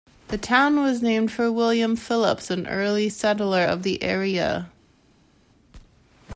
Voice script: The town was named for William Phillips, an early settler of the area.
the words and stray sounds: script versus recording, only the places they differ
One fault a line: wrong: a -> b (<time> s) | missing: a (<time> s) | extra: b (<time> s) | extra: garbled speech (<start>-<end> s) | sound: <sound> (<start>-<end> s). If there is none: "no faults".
no faults